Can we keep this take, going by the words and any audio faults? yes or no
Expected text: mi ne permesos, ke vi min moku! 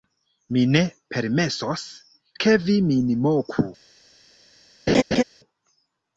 no